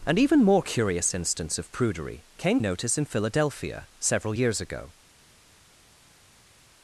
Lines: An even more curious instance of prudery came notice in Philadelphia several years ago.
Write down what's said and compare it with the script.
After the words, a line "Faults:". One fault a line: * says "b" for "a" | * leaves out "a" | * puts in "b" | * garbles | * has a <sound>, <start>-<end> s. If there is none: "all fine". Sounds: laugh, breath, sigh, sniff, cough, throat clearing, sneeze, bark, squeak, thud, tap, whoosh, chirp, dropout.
An even more curious instance of prudery came notice in Philadelphia several years ago.
Faults:
all fine